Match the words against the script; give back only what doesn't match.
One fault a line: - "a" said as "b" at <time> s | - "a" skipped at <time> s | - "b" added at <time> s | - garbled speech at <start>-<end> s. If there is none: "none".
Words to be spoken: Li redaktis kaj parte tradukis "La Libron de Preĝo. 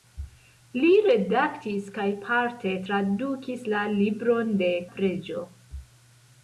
none